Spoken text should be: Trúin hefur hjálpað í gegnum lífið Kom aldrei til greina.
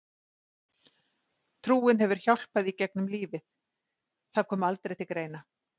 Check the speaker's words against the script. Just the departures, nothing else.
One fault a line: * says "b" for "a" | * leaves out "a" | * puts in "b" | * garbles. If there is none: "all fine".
* puts in "Það"